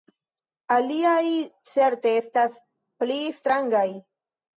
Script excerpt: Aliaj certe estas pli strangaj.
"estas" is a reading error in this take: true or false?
false